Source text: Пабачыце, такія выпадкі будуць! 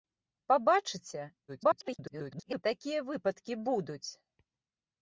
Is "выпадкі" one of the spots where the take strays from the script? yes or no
no